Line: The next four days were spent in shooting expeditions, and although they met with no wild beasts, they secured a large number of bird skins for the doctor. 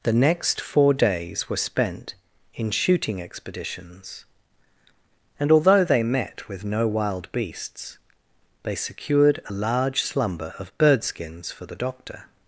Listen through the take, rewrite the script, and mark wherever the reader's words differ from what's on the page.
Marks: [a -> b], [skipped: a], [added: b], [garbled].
The next four days were spent in shooting expeditions, and although they met with no wild beasts, they secured a large [number -> slumber] of bird skins for the doctor.